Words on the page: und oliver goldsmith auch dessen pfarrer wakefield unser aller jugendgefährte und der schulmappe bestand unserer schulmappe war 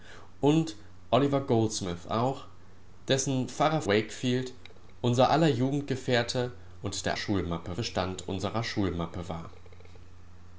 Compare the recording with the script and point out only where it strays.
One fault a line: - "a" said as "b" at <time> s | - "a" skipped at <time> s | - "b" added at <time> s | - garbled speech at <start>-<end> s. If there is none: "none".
none